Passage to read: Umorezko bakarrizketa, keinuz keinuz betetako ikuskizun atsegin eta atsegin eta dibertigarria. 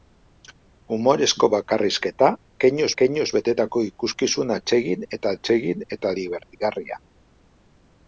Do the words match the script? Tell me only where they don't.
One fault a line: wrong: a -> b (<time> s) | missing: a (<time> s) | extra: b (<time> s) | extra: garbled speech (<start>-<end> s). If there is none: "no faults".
no faults